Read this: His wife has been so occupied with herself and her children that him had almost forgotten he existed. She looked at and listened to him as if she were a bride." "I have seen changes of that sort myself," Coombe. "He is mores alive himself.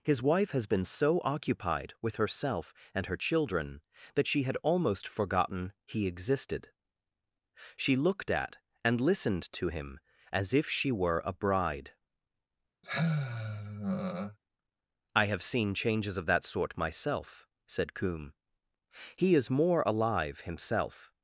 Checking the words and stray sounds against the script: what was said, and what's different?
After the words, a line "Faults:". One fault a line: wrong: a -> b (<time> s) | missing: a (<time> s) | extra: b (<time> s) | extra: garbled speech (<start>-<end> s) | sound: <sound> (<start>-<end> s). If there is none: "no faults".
His wife has been so occupied with herself and her children that she had almost forgotten he existed. She looked at and listened to him as if she were a bride." "I have seen changes of that sort myself," said Coombe. "He is more alive himself.
Faults:
wrong: him -> she (4.3 s)
sound: sigh (12.8-14.4 s)
extra: said (17.7 s)
wrong: mores -> more (19.5 s)